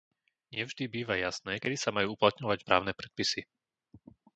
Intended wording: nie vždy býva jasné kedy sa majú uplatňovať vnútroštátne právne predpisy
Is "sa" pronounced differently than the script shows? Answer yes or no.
no